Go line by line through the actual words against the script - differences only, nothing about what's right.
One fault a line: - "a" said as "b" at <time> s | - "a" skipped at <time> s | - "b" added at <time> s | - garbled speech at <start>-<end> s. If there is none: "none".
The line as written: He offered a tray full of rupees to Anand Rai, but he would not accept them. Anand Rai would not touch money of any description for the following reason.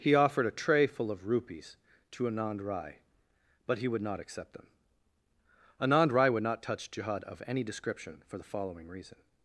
- "money" said as "jihad" at 6.9 s